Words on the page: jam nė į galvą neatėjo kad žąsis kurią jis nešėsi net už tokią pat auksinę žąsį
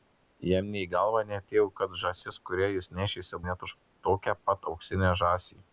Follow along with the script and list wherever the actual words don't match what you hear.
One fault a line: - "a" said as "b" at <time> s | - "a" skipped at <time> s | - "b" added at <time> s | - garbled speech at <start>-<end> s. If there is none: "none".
none